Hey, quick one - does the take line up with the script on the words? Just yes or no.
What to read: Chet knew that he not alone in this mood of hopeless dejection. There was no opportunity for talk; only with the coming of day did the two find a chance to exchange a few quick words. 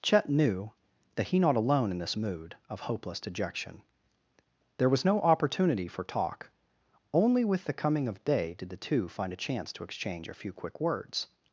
yes